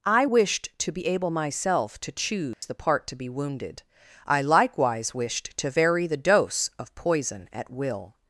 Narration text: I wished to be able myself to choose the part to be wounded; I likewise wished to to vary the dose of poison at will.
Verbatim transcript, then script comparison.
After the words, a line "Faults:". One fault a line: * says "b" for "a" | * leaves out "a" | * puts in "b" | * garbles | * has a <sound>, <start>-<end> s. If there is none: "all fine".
I wished to be able myself to choose the part to be wounded; I likewise wished to vary the dose of poison at will.
Faults:
* has a dropout, 2.5-2.6 s
* leaves out "to"